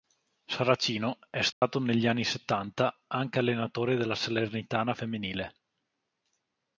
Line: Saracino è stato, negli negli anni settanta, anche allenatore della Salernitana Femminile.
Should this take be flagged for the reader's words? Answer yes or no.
yes